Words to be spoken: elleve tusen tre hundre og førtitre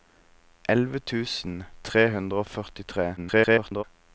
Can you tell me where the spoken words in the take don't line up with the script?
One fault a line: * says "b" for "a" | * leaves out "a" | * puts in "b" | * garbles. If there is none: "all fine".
* garbles